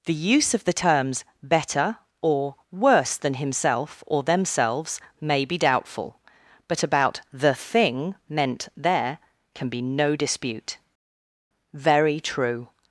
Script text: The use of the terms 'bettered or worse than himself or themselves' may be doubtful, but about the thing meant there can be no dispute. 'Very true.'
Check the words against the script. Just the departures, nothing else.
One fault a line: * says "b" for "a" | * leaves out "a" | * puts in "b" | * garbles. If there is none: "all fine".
* says "better" for "bettered"